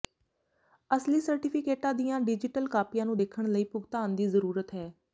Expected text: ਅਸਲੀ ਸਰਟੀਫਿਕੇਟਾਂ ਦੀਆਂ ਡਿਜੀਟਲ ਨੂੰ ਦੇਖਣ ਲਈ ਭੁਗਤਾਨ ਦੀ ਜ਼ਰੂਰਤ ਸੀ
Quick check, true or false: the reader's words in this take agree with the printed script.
false